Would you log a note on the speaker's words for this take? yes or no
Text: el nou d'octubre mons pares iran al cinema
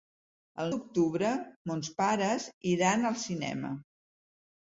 yes